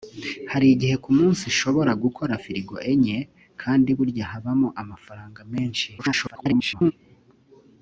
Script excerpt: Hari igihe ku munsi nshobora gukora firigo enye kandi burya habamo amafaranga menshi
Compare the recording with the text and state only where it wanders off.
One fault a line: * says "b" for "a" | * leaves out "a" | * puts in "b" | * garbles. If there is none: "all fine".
* garbles